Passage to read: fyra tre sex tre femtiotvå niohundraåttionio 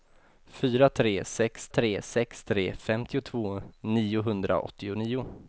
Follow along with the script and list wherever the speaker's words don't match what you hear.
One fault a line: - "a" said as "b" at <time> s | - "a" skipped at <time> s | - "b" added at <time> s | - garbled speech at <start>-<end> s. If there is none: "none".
- "sex tre" added at 2.0 s